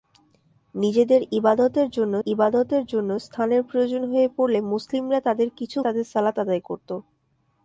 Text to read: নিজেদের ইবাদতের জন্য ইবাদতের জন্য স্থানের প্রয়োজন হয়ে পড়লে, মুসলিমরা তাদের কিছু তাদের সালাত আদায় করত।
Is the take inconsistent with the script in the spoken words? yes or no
no